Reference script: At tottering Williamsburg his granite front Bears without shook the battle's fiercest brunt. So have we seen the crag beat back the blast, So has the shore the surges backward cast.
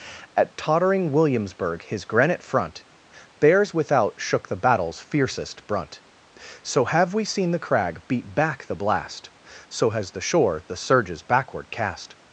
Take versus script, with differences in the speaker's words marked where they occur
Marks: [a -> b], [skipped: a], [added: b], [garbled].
At tottering Williamsburg his granite front Bears without shook the battle's fiercest brunt. So have we seen the crag beat back the blast, So has the shore the surges backward cast.